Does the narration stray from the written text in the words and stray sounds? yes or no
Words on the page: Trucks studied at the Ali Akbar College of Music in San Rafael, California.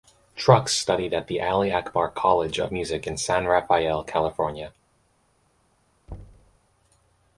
yes